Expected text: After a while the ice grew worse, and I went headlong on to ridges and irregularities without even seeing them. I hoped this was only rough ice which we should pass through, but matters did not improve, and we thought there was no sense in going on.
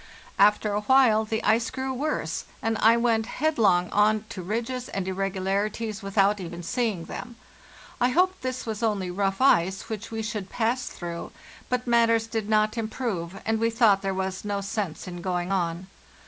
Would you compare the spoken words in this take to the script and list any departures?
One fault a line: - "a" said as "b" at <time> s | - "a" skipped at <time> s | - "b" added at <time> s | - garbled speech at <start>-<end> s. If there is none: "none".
none